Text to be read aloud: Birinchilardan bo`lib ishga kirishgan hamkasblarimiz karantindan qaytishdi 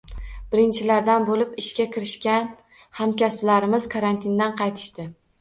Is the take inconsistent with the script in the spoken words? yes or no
no